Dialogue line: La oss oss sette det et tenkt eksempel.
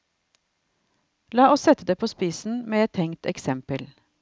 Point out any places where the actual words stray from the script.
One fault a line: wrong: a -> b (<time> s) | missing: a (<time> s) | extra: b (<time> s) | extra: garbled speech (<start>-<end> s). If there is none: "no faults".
missing: oss (1.6 s)
extra: på spissen med (1.9 s)